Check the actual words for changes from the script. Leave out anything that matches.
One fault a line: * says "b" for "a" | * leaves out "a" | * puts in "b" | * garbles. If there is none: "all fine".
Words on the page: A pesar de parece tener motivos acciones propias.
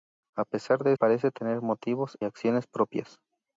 all fine